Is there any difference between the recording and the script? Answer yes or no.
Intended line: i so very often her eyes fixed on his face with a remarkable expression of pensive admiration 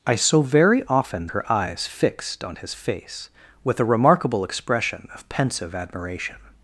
no